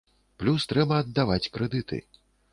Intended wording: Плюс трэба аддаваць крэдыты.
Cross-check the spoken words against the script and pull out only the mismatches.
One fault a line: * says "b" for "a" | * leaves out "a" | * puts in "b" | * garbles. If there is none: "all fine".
all fine